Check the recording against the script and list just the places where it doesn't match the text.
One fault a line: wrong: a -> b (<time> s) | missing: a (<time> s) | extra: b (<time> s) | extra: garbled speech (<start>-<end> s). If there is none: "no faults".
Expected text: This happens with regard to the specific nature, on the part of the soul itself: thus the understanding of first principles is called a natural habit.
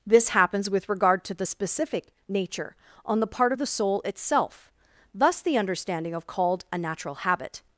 missing: first principles is (6.3 s)